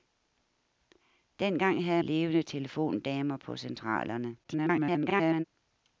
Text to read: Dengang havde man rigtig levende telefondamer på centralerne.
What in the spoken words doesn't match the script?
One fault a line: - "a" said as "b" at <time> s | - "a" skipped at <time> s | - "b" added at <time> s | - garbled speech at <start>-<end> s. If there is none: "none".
- "man rigtig" skipped at 2.0 s
- garbled speech at 4.4-5.4 s